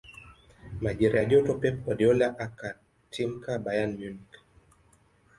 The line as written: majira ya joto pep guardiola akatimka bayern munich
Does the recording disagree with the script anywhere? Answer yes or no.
no